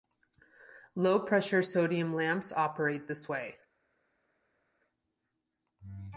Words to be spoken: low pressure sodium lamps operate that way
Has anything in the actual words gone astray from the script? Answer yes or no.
yes